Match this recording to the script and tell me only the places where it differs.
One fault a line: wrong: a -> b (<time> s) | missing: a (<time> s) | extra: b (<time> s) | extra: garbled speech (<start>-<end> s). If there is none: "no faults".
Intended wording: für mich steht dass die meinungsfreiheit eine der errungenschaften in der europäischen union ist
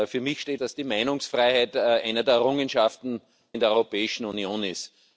no faults